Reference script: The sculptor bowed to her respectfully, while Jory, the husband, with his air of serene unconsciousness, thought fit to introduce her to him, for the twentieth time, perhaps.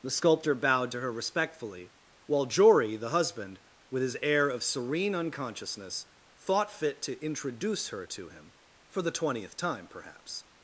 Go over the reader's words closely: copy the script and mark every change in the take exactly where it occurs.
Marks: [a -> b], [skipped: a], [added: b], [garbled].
The sculptor bowed to her respectfully, while Jory, the husband, with his air of serene unconsciousness, thought fit to introduce her to him, for the twentieth time, perhaps.